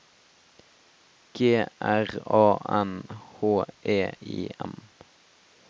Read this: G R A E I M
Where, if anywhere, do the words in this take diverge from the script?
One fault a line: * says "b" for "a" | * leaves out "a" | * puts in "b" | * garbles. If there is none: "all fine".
* puts in "N H"